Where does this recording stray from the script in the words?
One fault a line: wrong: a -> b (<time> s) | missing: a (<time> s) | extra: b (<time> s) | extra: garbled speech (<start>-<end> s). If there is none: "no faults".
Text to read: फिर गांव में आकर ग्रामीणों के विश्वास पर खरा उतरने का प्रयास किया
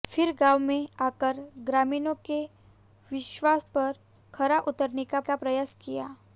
extra: का (5.2 s)